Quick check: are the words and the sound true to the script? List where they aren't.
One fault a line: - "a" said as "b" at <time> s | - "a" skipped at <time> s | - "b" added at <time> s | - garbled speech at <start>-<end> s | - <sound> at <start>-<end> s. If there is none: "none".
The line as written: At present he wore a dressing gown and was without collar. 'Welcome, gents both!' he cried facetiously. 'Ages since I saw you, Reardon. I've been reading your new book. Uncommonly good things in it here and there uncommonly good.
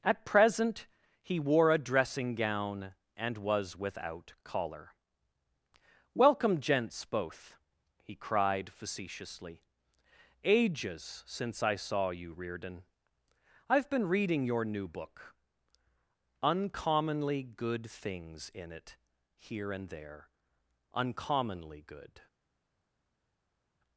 none